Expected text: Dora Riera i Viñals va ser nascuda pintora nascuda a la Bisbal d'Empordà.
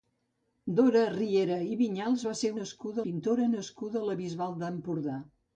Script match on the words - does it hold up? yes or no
yes